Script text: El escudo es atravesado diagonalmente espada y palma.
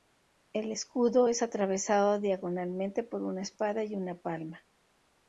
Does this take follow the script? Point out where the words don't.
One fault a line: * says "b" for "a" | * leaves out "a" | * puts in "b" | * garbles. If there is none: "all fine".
* puts in "por una"
* puts in "una"